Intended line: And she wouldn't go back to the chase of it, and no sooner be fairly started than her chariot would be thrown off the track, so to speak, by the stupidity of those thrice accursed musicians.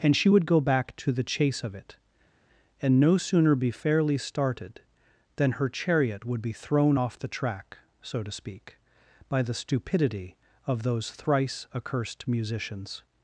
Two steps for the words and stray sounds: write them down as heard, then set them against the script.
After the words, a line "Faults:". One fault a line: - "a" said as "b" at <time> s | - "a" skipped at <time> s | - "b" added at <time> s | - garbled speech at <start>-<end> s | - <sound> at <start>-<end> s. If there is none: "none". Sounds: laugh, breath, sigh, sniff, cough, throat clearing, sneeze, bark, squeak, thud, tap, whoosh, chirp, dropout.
And she would go back to the chase of it, and no sooner be fairly started than her chariot would be thrown off the track, so to speak, by the stupidity of those thrice accursed musicians.
Faults:
- "wouldn't" said as "would" at 0.3 s